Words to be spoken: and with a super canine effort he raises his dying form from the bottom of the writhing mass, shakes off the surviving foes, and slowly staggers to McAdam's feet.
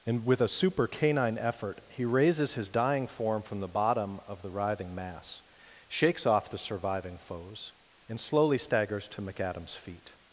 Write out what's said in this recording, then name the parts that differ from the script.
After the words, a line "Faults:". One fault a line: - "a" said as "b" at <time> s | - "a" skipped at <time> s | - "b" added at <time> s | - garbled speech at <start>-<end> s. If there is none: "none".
and with a super canine effort he raises his dying form from the bottom of the writhing mass, shakes off the surviving foes, and slowly staggers to McAdam's feet.
Faults:
none